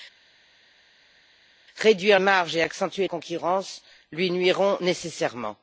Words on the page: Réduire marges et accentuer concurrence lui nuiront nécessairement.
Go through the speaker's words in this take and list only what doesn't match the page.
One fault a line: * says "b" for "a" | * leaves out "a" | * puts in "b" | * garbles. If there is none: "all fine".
all fine